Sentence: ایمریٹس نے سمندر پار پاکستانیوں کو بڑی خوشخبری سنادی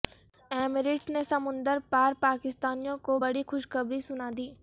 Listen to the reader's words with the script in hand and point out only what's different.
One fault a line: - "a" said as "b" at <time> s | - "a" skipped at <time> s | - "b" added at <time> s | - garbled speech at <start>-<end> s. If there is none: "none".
none